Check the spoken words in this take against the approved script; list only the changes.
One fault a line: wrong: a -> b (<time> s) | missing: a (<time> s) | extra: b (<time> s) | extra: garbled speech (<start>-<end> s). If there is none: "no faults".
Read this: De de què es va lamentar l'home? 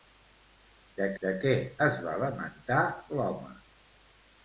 no faults